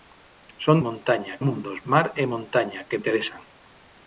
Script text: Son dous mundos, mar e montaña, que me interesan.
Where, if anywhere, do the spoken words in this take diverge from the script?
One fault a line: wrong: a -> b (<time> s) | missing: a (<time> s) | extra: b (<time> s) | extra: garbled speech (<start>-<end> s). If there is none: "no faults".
wrong: dous -> montaña (0.9 s)
missing: me (3.0 s)